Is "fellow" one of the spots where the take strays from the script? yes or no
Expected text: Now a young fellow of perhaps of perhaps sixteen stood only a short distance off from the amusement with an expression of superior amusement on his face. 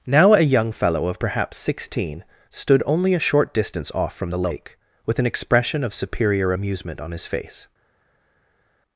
no